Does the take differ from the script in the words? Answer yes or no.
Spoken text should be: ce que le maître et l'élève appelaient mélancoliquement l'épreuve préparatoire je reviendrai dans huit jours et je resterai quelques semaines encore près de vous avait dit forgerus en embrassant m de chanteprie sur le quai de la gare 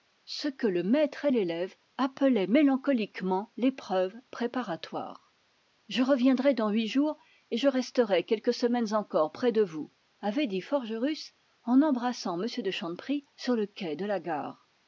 no